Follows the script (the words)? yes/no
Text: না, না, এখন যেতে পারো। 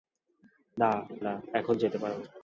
yes